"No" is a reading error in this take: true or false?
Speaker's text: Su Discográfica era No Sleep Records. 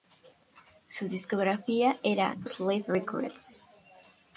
true